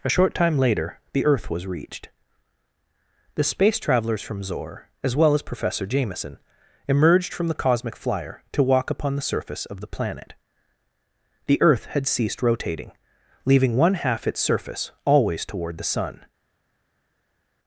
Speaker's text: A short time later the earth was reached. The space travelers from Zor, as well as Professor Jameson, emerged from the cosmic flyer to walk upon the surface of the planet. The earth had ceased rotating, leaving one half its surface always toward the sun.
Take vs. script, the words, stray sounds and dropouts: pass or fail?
pass